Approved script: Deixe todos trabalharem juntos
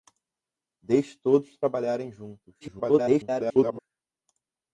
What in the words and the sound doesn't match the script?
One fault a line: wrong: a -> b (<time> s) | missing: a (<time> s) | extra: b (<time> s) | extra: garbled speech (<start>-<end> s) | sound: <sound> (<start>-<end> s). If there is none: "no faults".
extra: garbled speech (2.6-3.8 s)